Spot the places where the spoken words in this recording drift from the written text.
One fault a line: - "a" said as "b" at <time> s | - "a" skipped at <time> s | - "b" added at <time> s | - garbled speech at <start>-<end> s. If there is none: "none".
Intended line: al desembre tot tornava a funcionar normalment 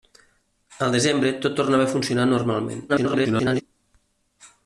- garbled speech at 2.9-3.6 s